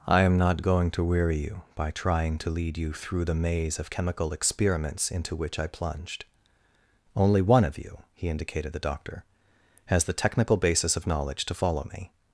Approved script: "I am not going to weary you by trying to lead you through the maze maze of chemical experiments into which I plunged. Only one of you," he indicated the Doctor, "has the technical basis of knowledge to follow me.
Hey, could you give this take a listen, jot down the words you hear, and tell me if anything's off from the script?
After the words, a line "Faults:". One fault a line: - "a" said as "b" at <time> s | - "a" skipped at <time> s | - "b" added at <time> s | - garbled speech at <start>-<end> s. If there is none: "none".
"I am not going to weary you by trying to lead you through the maze of chemical experiments into which I plunged. Only one of you," he indicated the Doctor, "has the technical basis of knowledge to follow me.
Faults:
- "maze" skipped at 3.8 s